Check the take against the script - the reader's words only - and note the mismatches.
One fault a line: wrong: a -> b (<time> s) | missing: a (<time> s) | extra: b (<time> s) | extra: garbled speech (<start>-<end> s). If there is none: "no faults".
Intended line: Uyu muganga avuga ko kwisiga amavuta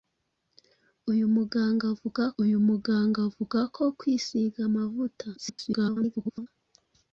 extra: uyu muganga avuga (2.4 s)
extra: garbled speech (5.4-6.5 s)